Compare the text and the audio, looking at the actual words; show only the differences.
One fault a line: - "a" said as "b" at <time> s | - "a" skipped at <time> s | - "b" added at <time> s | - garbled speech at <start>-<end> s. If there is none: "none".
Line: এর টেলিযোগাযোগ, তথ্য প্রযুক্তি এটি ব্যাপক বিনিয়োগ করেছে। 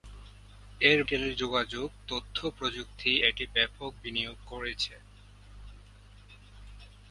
none